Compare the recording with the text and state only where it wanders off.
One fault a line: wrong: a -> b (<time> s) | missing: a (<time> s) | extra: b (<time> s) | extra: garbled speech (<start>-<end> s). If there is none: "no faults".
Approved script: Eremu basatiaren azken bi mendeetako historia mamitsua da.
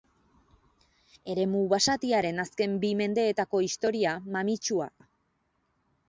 no faults